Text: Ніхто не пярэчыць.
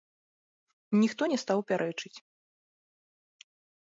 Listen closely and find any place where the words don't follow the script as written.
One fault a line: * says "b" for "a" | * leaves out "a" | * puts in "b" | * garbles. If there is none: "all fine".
* puts in "стаў"